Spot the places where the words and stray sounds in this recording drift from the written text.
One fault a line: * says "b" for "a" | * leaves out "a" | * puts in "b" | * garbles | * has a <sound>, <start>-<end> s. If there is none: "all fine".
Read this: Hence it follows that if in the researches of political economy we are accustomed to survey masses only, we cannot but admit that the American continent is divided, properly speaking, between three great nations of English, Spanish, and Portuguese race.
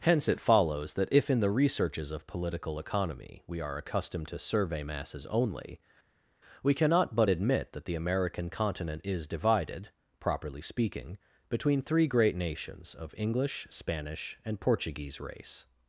all fine